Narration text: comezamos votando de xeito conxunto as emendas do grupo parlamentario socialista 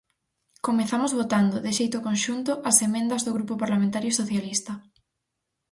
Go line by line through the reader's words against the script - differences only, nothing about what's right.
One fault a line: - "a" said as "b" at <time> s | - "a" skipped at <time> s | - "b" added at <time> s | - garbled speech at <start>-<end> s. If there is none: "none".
none